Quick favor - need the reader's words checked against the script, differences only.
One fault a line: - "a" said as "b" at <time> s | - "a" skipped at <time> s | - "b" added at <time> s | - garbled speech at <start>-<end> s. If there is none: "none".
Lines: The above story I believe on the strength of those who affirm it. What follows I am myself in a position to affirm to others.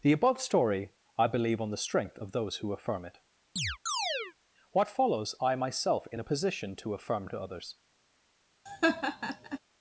- "am" skipped at 5.6 s